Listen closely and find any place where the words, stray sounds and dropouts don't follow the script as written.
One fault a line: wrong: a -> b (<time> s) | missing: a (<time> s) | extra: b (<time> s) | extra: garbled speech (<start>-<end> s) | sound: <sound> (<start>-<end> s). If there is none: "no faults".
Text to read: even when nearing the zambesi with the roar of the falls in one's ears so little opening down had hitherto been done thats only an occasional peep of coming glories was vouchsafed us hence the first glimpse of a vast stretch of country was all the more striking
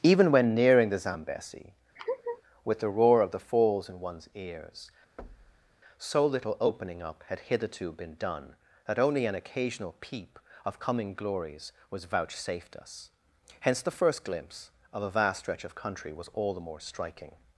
sound: laugh (2.0-2.4 s)
sound: thud (5.2-5.8 s)
wrong: down -> up (7.0 s)
wrong: thats -> that (8.9 s)